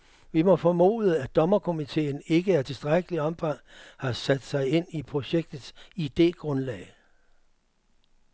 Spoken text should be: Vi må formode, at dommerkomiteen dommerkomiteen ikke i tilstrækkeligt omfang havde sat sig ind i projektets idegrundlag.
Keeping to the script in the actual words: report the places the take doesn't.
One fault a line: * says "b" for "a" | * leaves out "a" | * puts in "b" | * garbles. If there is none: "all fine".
* leaves out "dommerkomiteen"
* says "har" for "havde"